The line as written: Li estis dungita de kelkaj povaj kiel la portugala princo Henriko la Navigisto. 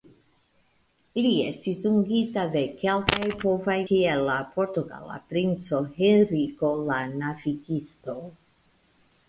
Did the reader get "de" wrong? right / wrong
right